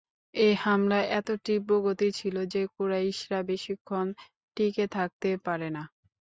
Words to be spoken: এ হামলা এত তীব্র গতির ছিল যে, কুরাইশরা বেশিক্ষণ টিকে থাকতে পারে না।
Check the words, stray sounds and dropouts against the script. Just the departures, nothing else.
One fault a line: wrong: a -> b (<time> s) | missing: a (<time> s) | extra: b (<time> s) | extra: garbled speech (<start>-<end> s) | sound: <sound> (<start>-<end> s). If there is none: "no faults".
no faults